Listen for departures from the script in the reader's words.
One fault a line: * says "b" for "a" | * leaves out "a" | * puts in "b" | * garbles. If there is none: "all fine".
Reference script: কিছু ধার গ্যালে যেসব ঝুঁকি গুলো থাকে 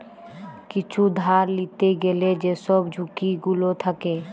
* puts in "লিতে"